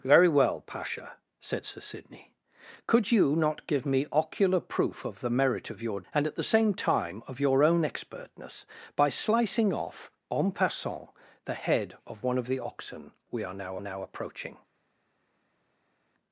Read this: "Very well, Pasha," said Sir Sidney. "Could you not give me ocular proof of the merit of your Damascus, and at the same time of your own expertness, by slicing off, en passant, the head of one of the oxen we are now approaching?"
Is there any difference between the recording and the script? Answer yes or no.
yes